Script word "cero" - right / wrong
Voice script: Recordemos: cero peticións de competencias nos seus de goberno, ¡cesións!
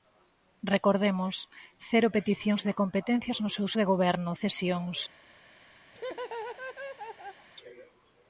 right